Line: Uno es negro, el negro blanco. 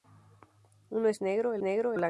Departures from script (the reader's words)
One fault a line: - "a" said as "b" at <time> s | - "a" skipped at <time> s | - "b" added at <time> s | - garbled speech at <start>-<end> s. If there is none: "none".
none